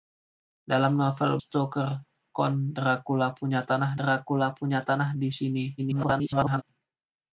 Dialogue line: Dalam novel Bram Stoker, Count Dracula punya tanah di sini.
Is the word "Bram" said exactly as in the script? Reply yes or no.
no